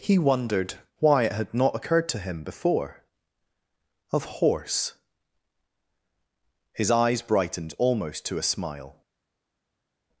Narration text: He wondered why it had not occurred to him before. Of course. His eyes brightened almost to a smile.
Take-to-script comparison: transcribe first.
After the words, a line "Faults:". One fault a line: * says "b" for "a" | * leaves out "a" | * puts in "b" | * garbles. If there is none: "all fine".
He wondered why it had not occurred to him before. Of horse. His eyes brightened almost to a smile.
Faults:
* says "horse" for "course"